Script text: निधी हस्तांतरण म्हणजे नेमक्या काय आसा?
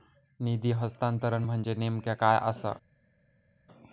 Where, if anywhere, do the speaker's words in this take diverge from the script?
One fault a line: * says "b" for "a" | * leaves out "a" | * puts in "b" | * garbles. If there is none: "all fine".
all fine